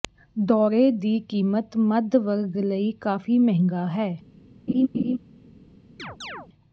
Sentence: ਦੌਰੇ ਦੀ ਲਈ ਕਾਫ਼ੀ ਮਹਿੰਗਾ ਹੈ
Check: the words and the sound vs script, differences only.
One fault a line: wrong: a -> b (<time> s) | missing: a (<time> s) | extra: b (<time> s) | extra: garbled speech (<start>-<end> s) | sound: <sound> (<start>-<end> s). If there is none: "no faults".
extra: ਕੀਮਤ ਮੱਧ ਵਰਗ (1.3 s)
sound: laugh (4.7-5.2 s)
sound: chirp (6.0-6.5 s)